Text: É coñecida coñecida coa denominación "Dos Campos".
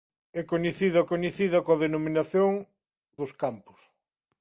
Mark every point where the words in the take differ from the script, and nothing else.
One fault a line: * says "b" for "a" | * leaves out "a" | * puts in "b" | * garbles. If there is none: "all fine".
all fine